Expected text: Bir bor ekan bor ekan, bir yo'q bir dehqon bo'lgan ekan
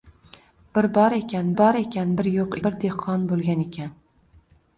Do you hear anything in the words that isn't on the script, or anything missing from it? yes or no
no